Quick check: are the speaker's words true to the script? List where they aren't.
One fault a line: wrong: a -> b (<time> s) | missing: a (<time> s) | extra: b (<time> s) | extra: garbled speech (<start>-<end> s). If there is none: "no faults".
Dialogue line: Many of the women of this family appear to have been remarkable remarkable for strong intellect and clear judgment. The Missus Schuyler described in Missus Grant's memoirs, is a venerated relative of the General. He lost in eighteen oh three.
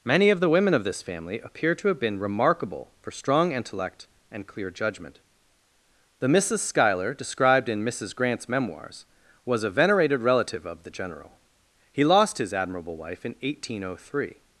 missing: remarkable (2.9 s)
wrong: is -> was (9.4 s)
extra: his admirable wife (12.4 s)